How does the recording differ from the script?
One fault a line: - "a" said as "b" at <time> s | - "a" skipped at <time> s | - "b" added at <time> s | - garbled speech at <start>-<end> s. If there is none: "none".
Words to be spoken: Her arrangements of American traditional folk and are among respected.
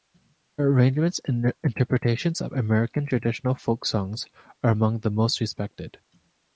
- "and interpretations" added at 1.2 s
- "and" said as "songs" at 3.9 s
- "the most" added at 5.0 s